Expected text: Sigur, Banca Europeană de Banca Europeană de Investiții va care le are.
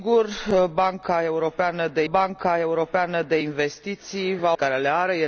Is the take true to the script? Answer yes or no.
yes